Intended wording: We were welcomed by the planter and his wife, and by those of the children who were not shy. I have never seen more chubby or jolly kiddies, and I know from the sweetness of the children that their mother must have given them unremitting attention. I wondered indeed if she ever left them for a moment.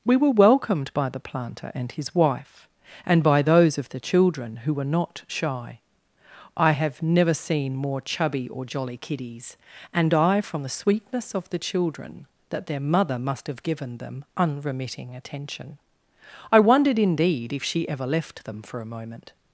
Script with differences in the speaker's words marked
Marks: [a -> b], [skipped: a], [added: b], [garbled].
We were welcomed by the planter and his wife, and by those of the children who were not shy. I have never seen more chubby or jolly kiddies, and I [skipped: know] from the sweetness of the children that their mother must have given them unremitting attention. I wondered indeed if she ever left them for a moment.